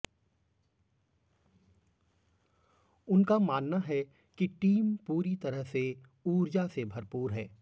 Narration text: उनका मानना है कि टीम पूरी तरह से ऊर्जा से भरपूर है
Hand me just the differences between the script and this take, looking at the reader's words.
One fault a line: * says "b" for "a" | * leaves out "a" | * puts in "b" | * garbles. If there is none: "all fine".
all fine